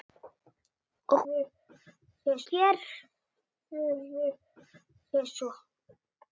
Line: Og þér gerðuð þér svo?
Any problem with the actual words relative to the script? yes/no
no